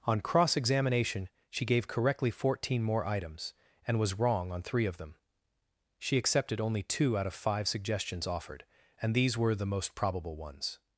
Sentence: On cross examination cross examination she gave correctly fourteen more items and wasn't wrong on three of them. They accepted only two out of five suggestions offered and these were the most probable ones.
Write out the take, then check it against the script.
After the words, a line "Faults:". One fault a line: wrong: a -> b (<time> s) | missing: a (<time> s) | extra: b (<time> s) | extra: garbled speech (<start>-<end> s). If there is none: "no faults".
On cross examination she gave correctly fourteen more items and was wrong on three of them. She accepted only two out of five suggestions offered and these were the most probable ones.
Faults:
missing: cross examination (1.3 s)
wrong: wasn't -> was (4.0 s)
wrong: They -> She (6.0 s)